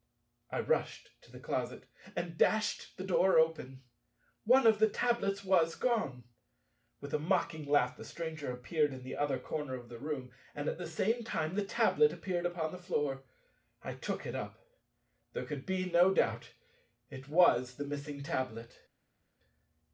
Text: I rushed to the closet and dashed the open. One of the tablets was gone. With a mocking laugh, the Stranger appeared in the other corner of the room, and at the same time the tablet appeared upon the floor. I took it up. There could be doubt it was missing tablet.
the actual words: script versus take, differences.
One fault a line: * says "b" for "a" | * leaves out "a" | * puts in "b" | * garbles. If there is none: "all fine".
* puts in "door"
* puts in "no"
* puts in "the"